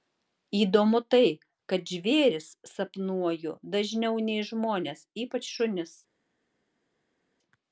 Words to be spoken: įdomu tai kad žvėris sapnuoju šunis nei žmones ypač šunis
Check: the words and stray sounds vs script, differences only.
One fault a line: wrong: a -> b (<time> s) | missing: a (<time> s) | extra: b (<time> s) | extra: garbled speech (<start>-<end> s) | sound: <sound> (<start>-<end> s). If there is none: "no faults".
wrong: šunis -> dažniau (3.8 s)